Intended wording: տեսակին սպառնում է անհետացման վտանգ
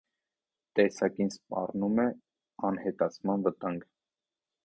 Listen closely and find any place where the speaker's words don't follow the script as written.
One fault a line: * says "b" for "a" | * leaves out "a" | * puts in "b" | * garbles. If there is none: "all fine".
all fine